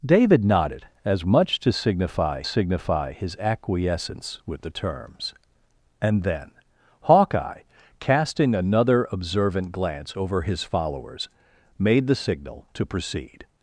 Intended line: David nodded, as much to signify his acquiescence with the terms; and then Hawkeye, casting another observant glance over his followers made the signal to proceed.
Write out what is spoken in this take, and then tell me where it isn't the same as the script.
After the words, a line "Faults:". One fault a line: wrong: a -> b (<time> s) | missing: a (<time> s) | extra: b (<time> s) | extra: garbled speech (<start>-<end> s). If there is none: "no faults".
David nodded, as much to signify signify his acquiescence with the terms; and then Hawkeye, casting another observant glance over his followers made the signal to proceed.
Faults:
extra: signify (2.4 s)